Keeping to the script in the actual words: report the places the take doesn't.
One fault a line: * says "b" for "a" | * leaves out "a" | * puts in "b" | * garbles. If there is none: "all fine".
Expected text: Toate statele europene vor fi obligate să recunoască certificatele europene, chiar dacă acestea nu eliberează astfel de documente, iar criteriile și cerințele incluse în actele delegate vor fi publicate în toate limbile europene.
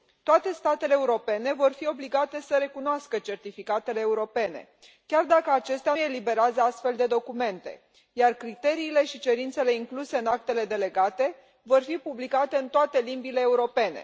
* leaves out "nu"